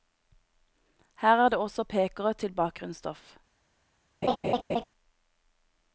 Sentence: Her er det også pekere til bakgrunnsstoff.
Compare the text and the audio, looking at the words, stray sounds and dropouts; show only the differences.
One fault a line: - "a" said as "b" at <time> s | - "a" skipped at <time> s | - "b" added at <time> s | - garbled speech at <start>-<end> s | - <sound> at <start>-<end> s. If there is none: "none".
- laugh at 4.2-4.8 s